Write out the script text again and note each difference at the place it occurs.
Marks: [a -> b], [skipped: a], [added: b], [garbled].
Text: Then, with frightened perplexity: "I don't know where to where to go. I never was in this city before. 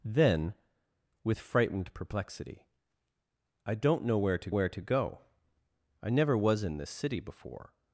Then, with frightened perplexity: "I don't know where to where to go. I never was in this city before.